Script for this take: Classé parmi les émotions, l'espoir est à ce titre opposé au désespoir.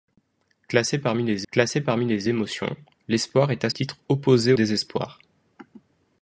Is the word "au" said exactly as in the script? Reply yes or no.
no